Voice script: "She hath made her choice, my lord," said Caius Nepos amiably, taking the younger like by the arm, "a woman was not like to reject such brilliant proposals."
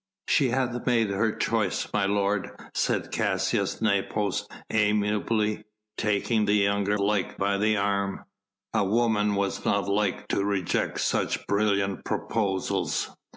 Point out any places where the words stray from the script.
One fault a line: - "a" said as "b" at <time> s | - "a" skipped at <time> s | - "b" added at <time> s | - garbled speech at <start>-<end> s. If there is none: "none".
none